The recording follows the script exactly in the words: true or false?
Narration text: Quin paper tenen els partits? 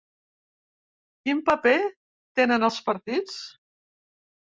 true